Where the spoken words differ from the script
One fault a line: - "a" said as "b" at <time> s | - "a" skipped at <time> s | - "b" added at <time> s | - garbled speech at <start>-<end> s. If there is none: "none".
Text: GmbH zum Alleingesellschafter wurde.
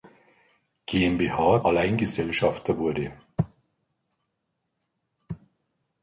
- "zum" skipped at 1.6 s